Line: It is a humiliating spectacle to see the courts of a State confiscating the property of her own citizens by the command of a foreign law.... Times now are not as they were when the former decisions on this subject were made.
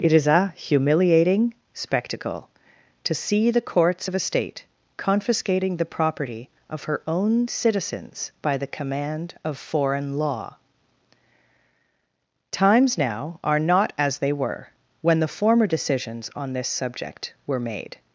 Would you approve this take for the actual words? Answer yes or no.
no